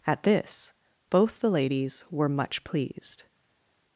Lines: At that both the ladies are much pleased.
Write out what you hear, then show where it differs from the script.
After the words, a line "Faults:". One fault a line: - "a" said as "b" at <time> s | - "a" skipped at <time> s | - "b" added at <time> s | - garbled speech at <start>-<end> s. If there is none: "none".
At this both the ladies were much pleased.
Faults:
- "that" said as "this" at 0.2 s
- "are" said as "were" at 2.1 s